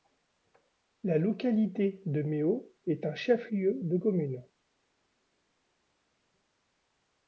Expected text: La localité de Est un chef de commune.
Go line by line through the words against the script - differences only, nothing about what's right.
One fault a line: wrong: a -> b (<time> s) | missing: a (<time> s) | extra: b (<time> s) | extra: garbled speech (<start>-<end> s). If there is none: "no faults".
extra: Méo (2.2 s)
extra: lieu (3.5 s)